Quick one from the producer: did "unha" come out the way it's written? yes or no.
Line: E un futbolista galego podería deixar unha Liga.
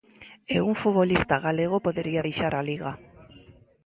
no